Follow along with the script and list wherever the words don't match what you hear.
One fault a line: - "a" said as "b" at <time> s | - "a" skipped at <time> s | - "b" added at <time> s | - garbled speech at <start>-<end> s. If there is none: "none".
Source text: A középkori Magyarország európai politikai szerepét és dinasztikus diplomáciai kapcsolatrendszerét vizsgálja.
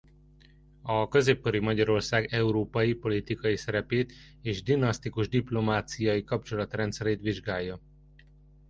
none